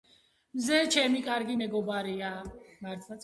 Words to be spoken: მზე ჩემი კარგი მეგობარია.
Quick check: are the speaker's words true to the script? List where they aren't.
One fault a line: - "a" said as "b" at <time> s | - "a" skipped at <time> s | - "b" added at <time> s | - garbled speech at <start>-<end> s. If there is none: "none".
none